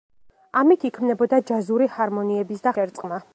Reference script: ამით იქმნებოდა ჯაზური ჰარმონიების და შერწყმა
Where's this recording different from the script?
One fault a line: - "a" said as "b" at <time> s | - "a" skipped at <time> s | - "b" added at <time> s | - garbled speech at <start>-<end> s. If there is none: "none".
none